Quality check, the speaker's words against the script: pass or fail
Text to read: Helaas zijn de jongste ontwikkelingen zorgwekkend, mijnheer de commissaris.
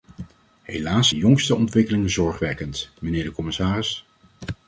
fail